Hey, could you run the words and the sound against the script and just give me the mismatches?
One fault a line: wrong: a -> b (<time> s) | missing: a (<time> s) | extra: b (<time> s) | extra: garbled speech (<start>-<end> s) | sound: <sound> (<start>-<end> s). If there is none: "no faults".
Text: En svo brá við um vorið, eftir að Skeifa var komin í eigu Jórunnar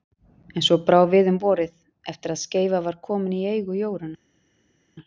no faults